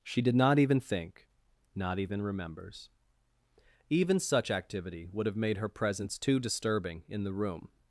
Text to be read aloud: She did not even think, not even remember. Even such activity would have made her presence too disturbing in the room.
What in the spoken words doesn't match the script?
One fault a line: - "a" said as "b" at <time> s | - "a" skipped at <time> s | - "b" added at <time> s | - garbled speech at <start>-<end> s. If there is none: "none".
- "remember" said as "remembers" at 2.2 s